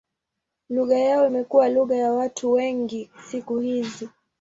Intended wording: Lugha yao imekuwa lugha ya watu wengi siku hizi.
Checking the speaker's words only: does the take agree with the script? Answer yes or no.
yes